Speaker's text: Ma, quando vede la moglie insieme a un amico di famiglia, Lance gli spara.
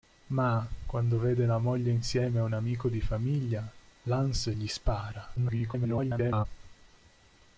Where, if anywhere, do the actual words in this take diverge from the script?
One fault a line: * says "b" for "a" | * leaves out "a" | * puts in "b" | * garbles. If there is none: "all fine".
* garbles